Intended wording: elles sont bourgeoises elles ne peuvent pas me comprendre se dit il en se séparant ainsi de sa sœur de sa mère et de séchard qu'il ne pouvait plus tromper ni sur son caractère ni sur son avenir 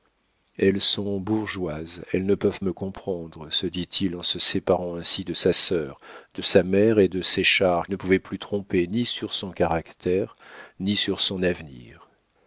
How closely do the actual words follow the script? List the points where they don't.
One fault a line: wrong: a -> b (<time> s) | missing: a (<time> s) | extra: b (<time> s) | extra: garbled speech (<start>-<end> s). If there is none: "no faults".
missing: pas (2.6 s)
missing: qu'il (7.9 s)